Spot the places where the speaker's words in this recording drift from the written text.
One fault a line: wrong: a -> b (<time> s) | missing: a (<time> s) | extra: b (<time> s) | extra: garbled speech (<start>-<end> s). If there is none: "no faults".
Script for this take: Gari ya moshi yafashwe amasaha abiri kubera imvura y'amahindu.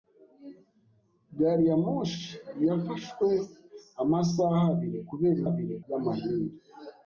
wrong: imvura -> abiri (5.5 s)